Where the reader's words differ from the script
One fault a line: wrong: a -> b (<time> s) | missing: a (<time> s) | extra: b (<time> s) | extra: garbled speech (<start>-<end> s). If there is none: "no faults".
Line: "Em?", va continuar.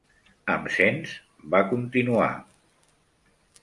extra: sents (0.8 s)